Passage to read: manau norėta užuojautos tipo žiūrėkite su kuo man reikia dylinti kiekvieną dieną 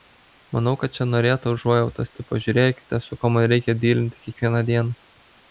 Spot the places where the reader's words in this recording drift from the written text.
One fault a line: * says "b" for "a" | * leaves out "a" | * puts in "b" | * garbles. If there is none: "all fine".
* puts in "kad čia"